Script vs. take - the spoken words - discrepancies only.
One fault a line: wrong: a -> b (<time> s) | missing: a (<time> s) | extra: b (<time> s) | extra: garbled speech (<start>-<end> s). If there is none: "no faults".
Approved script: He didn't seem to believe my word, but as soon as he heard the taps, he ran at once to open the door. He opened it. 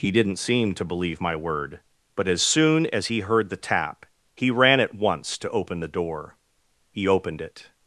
wrong: taps -> tap (3.6 s)